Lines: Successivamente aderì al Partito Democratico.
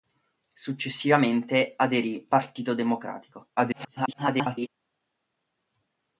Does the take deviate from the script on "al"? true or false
true